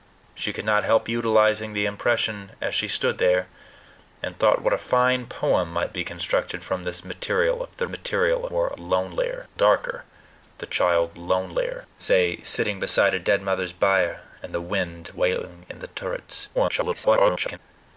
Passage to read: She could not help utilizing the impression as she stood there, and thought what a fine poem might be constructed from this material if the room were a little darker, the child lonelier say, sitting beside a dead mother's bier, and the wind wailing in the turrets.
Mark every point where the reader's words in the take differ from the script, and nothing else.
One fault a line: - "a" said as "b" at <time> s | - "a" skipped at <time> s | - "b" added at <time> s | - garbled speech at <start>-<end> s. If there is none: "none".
- "room" said as "material" at 7.9 s
- "little" said as "lonelier" at 8.8 s
- garbled speech at 16.5-17.6 s